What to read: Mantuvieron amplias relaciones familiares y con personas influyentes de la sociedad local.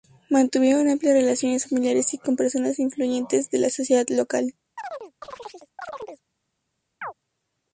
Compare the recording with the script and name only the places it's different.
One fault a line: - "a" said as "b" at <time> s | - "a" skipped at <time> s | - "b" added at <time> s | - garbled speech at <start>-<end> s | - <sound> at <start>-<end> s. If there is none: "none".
- chirp at 4.8-6.2 s
- chirp at 7.0-7.1 s